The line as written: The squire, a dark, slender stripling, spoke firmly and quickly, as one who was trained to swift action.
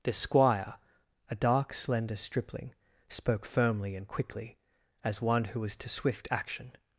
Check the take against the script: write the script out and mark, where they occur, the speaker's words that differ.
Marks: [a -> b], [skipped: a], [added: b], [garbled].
The squire, a dark, slender stripling, spoke firmly and quickly, as one who was [skipped: trained] to swift action.